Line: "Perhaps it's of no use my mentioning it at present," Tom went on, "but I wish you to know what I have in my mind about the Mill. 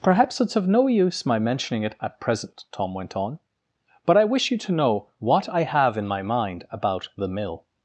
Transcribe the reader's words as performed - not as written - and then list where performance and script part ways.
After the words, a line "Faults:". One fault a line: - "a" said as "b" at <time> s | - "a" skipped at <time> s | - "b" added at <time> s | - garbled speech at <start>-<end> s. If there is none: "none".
"Perhaps it's of no use my mentioning it at present," Tom went on, "but I wish you to know what I have in my mind about the Mill.
Faults:
none